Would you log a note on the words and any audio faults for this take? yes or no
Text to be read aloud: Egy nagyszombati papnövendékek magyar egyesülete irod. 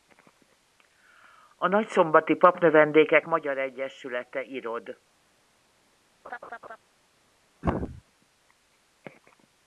yes